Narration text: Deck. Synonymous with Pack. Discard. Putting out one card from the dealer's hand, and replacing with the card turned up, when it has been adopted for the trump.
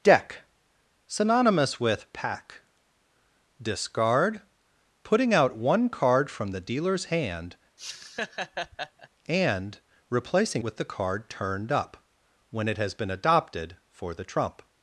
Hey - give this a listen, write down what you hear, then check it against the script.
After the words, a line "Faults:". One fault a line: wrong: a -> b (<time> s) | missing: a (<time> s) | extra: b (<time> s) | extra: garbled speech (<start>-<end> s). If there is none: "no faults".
Deck. Synonymous with Pack. Discard. Putting out one card from the dealer's hand, and replacing with the card turned up, when it has been adopted for the trump.
Faults:
no faults